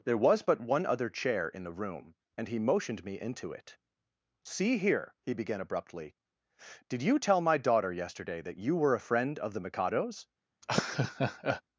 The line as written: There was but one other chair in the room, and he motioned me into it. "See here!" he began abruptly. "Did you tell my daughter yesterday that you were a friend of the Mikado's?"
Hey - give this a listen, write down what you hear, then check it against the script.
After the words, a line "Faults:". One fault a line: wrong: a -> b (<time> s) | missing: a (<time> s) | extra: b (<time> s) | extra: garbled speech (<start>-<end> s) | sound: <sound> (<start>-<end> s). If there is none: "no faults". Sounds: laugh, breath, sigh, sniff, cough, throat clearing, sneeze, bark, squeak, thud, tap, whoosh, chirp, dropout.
There was but one other chair in the room, and he motioned me into it. "See here!" he began abruptly. "Did you tell my daughter yesterday that you were a friend of the Mikado's?"
Faults:
sound: laugh (10.6-11.6 s)